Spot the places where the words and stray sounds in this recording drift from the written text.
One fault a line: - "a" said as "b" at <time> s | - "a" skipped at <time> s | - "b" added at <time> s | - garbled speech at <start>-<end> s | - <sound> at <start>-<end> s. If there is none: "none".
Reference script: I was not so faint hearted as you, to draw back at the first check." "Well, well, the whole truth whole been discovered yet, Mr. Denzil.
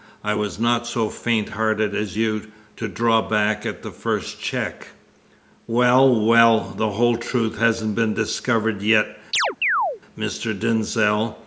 - "whole" said as "hasn't" at 7.6 s
- chirp at 9.3-10.0 s